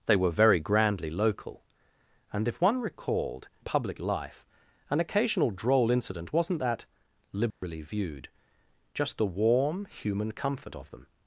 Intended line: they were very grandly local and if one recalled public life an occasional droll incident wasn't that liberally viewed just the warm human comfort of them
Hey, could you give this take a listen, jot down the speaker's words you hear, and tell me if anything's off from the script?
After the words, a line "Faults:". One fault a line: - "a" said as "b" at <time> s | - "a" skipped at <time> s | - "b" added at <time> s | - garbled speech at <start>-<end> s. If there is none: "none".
they were very grandly local and if one recalled public life an occasional droll incident wasn't that liberally viewed just the warm human comfort of them
Faults:
none